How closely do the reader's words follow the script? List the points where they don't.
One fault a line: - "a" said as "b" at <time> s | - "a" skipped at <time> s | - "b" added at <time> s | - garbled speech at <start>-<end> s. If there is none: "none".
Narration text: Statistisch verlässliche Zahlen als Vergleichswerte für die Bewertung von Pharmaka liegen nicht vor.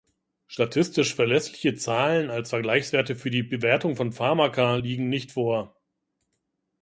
none